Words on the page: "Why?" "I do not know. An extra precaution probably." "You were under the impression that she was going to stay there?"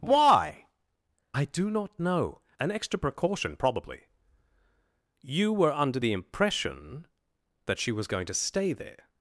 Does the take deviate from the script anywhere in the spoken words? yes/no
no